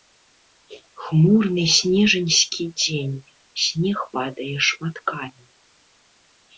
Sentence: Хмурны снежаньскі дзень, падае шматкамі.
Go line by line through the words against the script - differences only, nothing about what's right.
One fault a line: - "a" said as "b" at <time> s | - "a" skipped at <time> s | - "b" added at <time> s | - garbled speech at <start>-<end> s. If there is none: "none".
- "снег" added at 3.7 s